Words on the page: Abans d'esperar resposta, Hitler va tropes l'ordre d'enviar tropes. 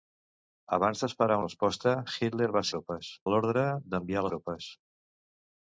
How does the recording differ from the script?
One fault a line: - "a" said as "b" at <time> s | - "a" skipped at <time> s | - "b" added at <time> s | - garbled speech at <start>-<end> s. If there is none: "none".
none